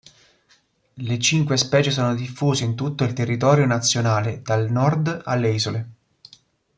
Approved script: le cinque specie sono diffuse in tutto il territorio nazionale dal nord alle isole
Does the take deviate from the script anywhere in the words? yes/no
no